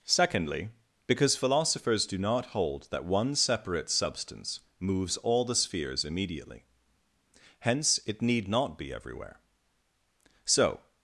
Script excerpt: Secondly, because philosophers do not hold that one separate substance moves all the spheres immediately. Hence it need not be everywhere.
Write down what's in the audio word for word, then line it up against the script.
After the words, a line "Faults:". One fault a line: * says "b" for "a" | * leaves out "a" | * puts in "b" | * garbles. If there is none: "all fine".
Secondly, because philosophers do not hold that one separate substance moves all the spheres immediately. Hence it need not be everywhere. So
Faults:
* puts in "So"